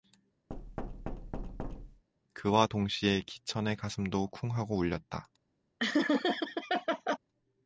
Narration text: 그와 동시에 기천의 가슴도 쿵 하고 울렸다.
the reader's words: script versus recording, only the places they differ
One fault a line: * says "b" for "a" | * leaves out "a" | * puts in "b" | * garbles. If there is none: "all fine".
all fine